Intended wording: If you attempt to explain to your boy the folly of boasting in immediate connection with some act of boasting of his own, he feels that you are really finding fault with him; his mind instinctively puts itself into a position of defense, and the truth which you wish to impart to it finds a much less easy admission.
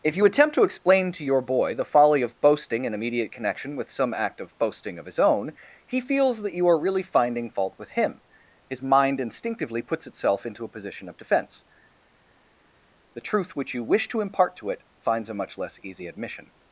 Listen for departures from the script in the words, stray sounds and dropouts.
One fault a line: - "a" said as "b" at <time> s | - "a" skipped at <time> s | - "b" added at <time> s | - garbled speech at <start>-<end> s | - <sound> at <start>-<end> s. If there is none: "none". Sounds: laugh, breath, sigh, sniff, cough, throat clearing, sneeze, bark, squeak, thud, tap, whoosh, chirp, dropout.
- "and" skipped at 11.7 s